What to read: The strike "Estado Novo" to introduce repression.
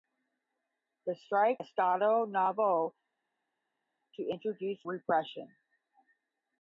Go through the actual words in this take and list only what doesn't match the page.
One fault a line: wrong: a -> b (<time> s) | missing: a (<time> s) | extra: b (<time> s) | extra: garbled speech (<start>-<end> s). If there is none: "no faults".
no faults